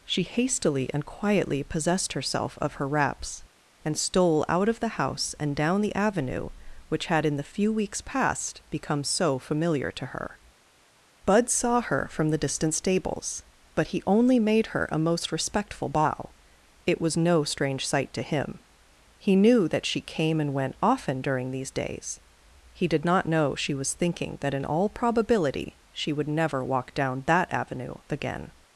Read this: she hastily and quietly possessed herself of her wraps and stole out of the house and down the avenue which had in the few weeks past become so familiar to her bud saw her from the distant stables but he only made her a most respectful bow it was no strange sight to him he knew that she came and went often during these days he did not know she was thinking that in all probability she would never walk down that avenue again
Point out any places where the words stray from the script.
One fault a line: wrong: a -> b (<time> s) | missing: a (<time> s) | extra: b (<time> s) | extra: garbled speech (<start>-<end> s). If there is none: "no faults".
no faults